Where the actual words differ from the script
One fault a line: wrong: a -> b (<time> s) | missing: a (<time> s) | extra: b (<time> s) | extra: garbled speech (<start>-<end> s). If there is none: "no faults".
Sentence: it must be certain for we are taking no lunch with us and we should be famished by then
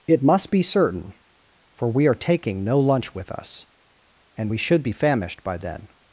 no faults